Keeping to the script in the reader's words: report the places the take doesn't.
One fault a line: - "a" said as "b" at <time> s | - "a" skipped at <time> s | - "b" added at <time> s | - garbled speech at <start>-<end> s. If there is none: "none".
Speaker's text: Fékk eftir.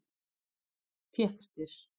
none